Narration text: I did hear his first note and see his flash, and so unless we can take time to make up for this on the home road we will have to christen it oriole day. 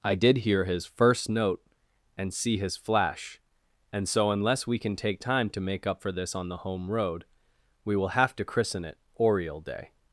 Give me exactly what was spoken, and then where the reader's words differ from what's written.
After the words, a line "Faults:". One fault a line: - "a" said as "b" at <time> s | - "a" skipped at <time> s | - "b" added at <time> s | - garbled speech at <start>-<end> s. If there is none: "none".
I did hear his first note and see his flash, and so unless we can take time to make up for this on the home road we will have to christen it oriole day.
Faults:
none